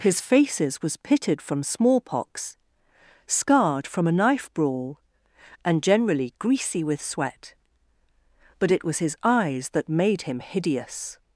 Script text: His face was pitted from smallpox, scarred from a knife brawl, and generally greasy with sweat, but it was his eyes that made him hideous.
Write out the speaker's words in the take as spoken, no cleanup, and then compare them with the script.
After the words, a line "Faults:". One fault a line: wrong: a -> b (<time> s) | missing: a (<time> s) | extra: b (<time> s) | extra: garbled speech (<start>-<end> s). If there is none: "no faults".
His faces was pitted from smallpox, scarred from a knife brawl, and generally greasy with sweat, but it was his eyes that made him hideous.
Faults:
wrong: face -> faces (0.2 s)